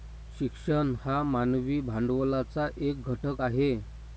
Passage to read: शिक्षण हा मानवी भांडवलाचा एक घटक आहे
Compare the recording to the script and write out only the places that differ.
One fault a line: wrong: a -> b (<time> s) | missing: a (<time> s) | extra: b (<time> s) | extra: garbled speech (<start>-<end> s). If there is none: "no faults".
no faults